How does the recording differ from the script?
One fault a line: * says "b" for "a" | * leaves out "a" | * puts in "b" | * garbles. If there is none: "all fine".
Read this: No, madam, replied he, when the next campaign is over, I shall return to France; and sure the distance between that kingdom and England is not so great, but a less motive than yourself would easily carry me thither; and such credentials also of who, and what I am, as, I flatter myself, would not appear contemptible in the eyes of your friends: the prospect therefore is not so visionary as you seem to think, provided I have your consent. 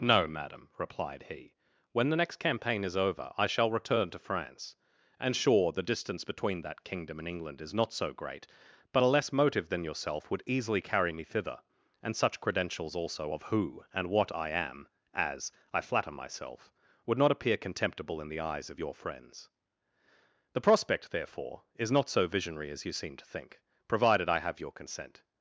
all fine